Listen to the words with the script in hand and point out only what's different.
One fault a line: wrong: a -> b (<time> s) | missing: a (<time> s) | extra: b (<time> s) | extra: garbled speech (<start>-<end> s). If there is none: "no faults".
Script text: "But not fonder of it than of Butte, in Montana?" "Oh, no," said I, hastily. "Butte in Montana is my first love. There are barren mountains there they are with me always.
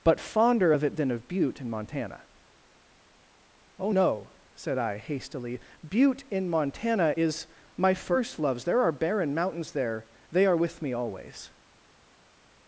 missing: not (0.2 s)
wrong: love -> loves (8.4 s)